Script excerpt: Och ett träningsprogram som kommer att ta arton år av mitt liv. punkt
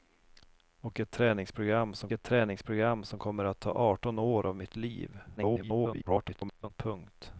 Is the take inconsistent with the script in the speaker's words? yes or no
yes